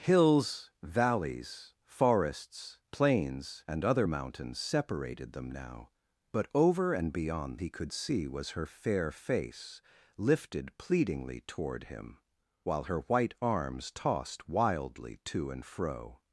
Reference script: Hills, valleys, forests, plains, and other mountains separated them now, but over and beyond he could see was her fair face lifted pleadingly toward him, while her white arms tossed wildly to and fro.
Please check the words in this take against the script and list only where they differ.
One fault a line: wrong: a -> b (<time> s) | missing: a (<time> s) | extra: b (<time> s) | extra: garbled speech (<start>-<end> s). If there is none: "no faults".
no faults